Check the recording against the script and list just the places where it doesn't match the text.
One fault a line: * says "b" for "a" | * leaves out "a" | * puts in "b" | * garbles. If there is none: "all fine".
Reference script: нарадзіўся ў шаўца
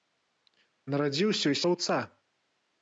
all fine